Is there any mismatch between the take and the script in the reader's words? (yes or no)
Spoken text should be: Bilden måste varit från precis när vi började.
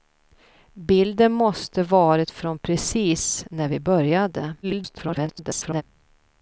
yes